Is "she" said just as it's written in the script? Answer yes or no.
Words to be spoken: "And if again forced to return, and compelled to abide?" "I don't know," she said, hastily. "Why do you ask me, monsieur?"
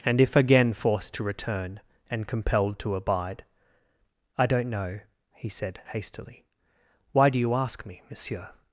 no